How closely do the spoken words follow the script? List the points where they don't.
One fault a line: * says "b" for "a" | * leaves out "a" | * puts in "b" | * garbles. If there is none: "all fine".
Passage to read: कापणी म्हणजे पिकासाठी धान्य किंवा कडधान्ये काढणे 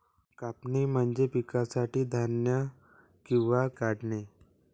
* leaves out "कडधान्ये"